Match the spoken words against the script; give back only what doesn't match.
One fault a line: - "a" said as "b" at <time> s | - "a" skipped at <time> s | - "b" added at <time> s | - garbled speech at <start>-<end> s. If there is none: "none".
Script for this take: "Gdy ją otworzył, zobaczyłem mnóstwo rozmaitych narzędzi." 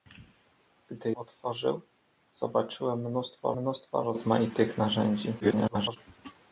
- "ją" skipped at 1.1 s
- "mnóstwo" added at 3.5 s
- garbled speech at 5.4-6.0 s